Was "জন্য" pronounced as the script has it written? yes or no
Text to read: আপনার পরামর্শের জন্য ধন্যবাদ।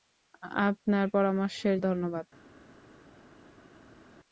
no